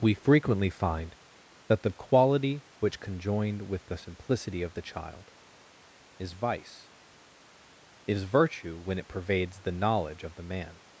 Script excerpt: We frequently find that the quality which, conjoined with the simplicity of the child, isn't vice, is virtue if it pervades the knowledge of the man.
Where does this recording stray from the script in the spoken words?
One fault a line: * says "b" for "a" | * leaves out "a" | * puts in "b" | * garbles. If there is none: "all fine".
* says "is" for "isn't"
* says "when" for "if"